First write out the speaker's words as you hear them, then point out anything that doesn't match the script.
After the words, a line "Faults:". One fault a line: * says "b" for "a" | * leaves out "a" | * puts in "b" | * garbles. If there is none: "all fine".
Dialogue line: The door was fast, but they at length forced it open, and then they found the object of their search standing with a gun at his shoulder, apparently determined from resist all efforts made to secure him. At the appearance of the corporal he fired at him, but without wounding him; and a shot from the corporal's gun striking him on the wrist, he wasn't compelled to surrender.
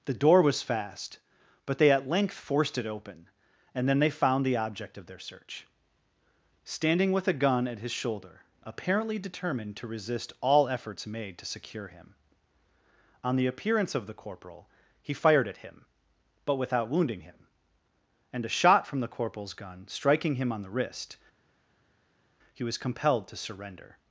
The door was fast, but they at length forced it open, and then they found the object of their search standing with a gun at his shoulder, apparently determined to resist all efforts made to secure him. On the appearance of the corporal he fired at him, but without wounding him; and a shot from the corporal's gun striking him on the wrist, he was compelled to surrender.
Faults:
* says "to" for "from"
* says "On" for "At"
* says "was" for "wasn't"